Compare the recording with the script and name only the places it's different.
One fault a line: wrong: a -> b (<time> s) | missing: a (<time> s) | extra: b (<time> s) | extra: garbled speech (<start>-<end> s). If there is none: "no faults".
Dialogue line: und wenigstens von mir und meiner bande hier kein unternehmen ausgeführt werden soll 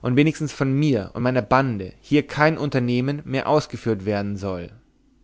extra: mehr (3.3 s)